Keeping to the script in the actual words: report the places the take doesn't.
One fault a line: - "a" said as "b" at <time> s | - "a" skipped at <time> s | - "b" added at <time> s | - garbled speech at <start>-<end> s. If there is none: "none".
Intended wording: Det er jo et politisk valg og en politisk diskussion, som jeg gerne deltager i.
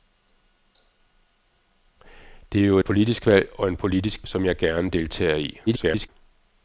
- "et" skipped at 2.8 s
- "diskussion" skipped at 4.3 s
- garbled speech at 5.7-6.1 s